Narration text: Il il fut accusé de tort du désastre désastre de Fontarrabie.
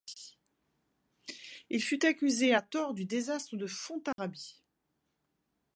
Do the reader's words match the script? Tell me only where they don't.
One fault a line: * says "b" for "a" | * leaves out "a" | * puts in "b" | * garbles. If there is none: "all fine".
* leaves out "il"
* says "à" for "de"
* leaves out "désastre"